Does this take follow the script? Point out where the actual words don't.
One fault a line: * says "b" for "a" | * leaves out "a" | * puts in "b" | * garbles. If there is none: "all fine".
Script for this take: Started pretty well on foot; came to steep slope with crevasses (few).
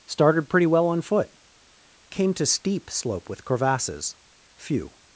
all fine